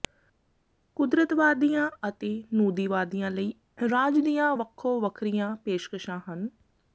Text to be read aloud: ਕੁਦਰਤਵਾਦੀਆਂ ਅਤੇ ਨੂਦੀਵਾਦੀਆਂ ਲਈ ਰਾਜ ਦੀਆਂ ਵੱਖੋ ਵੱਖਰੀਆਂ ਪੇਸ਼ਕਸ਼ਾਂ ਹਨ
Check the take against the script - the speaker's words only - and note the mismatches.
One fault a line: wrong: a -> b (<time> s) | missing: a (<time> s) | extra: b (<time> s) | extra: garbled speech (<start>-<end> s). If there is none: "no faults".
no faults